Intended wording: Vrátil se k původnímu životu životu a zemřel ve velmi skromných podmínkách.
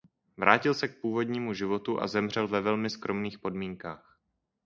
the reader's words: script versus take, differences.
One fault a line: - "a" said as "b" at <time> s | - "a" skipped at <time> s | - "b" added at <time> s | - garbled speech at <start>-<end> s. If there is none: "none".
- "životu" skipped at 2.0 s